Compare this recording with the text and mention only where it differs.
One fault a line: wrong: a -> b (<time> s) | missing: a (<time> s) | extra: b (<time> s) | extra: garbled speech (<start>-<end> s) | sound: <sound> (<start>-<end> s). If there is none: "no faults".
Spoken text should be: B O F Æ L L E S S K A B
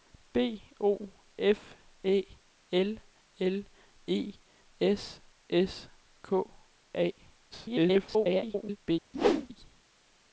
extra: garbled speech (7.5-8.8 s)
sound: whoosh (9.1-9.5 s)